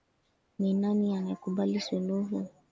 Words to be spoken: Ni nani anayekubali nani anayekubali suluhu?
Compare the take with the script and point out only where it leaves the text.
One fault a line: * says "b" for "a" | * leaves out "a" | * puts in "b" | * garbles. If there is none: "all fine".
* leaves out "nani anayekubali"